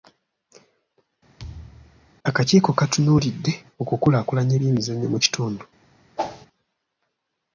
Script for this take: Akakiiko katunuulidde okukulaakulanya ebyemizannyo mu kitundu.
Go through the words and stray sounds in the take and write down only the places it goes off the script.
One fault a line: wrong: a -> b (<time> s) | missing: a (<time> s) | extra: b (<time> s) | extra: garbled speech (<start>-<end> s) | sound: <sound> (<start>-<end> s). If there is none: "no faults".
sound: thud (1.4-2.1 s)
sound: whoosh (6.2-6.5 s)